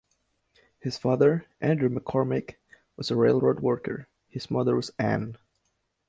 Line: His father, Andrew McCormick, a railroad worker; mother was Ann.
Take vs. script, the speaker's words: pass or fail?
fail